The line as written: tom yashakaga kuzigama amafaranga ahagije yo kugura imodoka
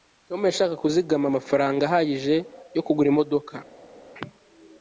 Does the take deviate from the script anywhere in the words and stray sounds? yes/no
no